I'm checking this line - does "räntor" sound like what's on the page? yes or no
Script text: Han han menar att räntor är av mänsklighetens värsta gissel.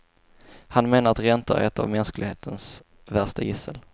yes